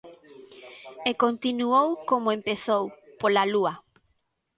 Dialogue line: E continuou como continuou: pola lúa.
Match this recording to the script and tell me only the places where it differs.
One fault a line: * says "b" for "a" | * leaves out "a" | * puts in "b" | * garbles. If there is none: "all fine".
* says "empezou" for "continuou"